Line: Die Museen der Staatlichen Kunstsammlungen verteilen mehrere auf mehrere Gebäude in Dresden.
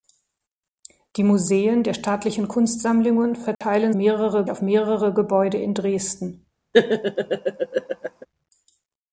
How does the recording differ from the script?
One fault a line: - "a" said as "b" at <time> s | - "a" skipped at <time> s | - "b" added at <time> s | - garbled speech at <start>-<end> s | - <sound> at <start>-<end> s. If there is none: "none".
- dropout at 3.5-3.6 s
- laugh at 6.7-8.3 s